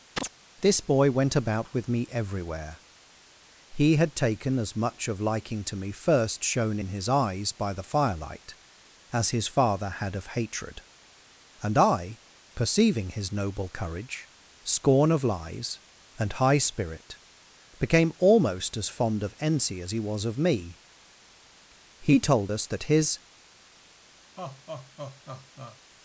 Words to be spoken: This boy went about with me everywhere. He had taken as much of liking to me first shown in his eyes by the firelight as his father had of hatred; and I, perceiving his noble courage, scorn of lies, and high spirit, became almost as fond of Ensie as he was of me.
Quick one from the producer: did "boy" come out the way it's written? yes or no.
yes